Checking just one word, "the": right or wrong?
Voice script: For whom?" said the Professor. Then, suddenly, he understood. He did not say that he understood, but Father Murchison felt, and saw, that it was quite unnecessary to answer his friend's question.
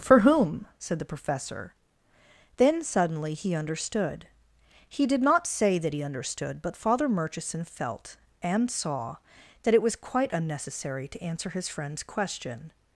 right